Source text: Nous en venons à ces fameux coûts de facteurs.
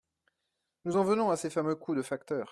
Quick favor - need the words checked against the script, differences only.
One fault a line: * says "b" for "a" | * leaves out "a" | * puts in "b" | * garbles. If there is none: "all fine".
all fine